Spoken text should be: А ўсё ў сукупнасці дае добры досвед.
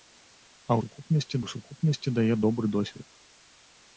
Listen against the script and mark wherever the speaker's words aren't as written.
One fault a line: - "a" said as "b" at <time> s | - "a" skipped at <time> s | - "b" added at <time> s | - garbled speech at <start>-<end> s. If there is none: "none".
- "ўсё" said as "сукупнасці" at 0.8 s